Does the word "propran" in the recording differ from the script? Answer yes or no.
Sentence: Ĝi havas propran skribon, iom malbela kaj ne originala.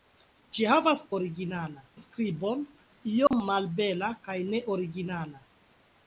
yes